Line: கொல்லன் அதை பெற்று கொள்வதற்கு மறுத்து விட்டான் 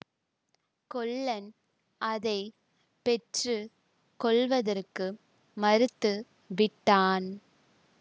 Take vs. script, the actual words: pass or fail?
pass